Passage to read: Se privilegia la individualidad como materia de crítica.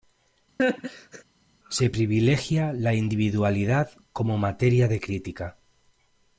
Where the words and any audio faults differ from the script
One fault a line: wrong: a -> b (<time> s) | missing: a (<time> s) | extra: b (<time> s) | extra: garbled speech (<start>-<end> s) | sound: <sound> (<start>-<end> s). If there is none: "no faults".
sound: laugh (0.6-1.2 s)